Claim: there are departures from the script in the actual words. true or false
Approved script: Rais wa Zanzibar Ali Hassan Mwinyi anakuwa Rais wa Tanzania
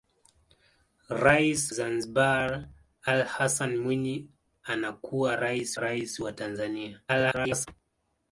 true